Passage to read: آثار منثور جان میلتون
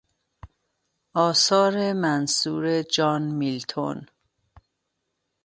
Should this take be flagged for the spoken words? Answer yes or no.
no